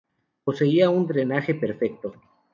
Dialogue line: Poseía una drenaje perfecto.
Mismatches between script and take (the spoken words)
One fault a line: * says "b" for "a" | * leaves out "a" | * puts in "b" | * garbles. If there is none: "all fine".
* says "un" for "una"